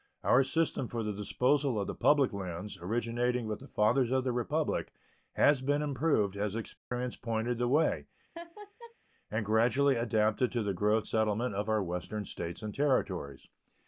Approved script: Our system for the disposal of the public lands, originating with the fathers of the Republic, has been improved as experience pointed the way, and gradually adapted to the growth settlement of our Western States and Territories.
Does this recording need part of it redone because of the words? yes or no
no